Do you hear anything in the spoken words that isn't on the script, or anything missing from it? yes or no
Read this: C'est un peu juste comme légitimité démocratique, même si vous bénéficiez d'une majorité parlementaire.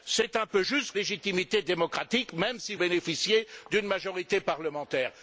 yes